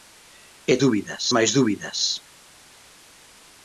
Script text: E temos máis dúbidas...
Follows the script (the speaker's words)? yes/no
no